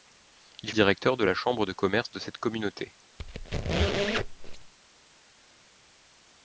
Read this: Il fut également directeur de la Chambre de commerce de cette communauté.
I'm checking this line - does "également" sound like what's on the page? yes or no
no